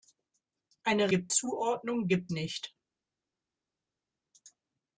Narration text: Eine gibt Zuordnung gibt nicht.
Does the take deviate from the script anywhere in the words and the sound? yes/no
no